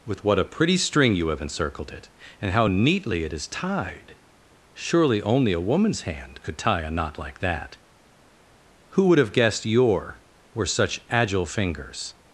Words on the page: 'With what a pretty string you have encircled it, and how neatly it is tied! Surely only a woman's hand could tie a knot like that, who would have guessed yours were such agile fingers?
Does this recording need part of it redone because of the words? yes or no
yes